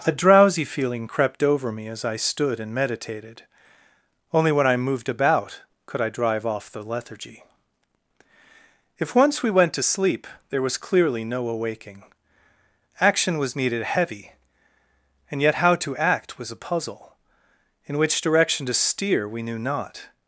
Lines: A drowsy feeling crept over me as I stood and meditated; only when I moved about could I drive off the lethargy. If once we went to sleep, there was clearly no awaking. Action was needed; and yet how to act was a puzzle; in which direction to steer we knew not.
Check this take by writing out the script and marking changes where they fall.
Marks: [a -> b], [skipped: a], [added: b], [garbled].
A drowsy feeling crept over me as I stood and meditated; only when I moved about could I drive off the lethargy. If once we went to sleep, there was clearly no awaking. Action was needed; [added: heavy] and yet how to act was a puzzle; in which direction to steer we knew not.